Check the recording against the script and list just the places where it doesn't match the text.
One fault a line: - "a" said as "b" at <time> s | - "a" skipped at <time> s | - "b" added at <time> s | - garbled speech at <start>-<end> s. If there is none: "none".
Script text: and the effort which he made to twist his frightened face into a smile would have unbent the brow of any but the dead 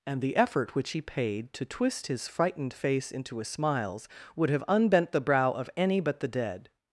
- "made" said as "paid" at 1.0 s
- "smile" said as "smiles" at 3.4 s